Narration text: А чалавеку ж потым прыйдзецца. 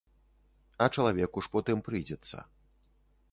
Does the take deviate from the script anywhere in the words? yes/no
no